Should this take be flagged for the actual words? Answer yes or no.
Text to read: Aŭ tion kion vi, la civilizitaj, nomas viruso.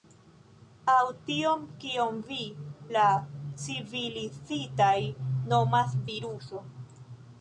no